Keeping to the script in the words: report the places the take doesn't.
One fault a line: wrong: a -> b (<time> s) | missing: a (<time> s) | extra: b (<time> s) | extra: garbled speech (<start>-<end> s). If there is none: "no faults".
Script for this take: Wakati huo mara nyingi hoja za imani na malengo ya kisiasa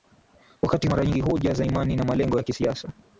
missing: huo (0.9 s)